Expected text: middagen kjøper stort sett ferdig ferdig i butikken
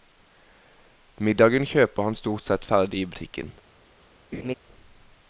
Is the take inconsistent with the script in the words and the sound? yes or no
yes